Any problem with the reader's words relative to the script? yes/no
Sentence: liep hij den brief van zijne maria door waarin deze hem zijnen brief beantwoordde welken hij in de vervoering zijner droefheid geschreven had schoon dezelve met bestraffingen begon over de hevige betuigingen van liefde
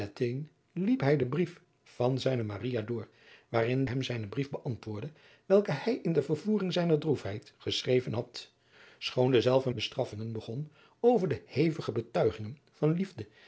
yes